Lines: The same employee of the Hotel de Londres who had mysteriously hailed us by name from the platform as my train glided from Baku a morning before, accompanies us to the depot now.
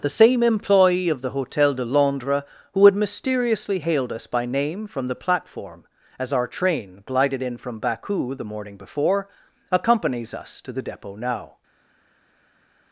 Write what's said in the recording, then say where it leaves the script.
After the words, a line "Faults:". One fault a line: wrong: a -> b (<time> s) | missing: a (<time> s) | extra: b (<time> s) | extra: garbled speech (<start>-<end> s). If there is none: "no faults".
The same employee of the Hotel de Londres who had mysteriously hailed us by name from the platform as our train glided in from Baku the morning before, accompanies us to the depot now.
Faults:
wrong: my -> our (6.3 s)
extra: in (7.4 s)
wrong: a -> the (8.3 s)